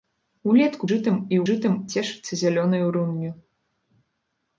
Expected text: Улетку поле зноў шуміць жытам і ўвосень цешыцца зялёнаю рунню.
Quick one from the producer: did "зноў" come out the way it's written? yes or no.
no